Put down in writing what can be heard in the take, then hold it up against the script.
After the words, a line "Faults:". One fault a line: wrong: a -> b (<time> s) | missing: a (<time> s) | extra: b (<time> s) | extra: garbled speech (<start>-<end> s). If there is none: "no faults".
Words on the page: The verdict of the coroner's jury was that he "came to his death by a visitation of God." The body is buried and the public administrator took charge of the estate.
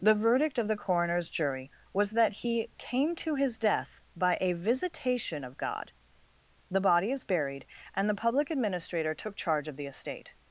The verdict of the coroner's jury was that he "came to his death by a visitation of God." The body is buried and the public administrator took charge of the estate.
Faults:
no faults